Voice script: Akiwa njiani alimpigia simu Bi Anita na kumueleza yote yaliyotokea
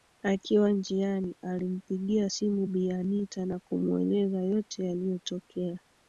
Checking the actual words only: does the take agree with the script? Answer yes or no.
yes